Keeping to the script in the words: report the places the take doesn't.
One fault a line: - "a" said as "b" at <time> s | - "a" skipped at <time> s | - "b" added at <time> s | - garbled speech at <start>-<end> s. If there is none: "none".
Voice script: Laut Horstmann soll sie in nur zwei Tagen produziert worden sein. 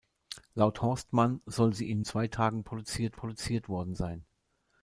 - "nur" skipped at 2.0 s
- "produziert" added at 3.1 s